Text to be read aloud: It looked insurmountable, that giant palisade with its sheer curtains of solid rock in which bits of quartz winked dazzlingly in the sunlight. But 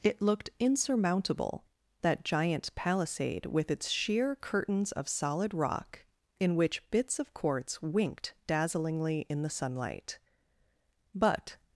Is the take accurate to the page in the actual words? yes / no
yes